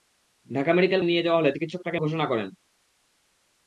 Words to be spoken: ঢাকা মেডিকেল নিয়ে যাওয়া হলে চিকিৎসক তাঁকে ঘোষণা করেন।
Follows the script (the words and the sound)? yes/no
yes